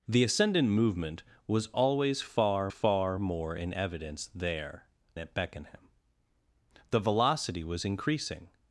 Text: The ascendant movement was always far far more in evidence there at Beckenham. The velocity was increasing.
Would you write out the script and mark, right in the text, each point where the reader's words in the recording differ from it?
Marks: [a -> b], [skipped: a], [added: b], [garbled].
The ascendant movement was always far far more in evidence there at Beckenham. The velocity was increasing.